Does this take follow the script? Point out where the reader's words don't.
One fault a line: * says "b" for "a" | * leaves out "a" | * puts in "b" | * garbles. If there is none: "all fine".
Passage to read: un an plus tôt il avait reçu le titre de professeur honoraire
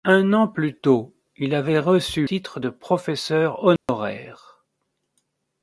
* leaves out "le"